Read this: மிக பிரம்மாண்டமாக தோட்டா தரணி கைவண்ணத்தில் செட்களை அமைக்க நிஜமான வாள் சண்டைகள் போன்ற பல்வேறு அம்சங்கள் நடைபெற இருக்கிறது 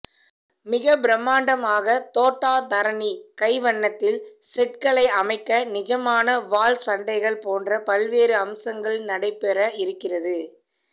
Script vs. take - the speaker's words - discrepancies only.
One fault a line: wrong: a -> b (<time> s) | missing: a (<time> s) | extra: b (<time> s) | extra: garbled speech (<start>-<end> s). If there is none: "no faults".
no faults